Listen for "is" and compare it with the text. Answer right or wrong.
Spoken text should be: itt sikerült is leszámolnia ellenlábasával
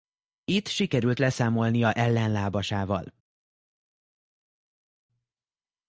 wrong